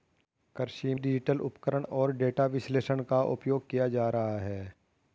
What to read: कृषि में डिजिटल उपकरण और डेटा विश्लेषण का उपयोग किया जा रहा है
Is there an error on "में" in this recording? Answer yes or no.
yes